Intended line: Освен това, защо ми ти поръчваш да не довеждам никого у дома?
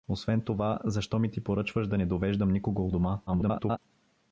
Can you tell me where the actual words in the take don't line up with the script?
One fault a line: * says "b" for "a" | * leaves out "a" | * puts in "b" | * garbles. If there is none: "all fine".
* garbles